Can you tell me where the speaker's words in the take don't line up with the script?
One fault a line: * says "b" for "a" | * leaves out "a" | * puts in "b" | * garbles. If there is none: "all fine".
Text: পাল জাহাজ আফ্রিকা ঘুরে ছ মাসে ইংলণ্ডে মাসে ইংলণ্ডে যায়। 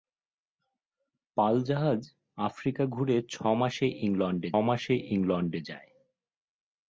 all fine